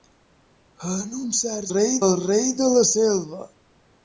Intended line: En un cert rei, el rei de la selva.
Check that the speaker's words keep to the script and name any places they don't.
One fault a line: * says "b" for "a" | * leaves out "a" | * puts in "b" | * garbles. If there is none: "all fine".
all fine